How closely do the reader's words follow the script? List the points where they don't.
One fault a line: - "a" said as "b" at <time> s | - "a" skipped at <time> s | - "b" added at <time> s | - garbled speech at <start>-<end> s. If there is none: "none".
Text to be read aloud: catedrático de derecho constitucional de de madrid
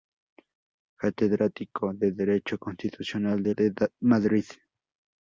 none